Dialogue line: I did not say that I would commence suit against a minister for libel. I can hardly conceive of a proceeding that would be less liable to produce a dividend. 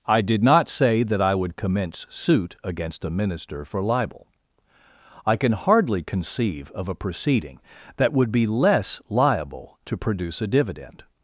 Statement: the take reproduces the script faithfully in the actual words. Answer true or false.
true